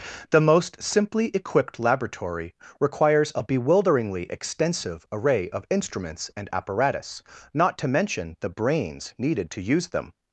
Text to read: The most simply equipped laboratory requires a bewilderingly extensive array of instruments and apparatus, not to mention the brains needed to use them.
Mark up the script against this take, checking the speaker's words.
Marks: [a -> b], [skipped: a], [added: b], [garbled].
The most simply equipped laboratory requires a bewilderingly extensive array of instruments and apparatus, not to mention the brains needed to use them.